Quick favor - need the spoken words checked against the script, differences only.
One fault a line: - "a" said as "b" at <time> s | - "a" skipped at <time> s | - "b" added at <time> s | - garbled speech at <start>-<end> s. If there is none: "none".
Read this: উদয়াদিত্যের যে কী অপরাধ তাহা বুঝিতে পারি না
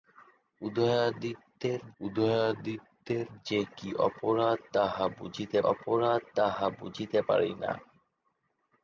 - "উদয়াদিত্যের" added at 2.0 s
- "অপরাধ তাহা বুঝিতে" added at 5.6 s